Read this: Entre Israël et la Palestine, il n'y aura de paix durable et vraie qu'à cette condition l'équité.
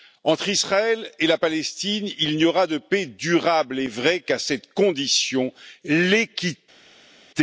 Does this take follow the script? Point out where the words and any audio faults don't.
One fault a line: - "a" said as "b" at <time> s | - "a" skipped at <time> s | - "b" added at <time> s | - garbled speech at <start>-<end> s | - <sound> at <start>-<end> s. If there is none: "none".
none